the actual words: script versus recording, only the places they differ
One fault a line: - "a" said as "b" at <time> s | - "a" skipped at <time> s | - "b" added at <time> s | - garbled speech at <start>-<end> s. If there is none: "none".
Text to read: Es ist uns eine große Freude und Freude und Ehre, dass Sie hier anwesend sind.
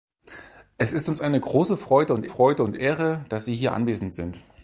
none